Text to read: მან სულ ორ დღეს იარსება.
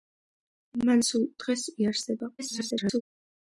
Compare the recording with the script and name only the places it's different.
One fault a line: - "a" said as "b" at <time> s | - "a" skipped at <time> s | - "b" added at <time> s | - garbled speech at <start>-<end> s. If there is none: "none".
- "ორ" skipped at 1.2 s
- garbled speech at 2.4-3.0 s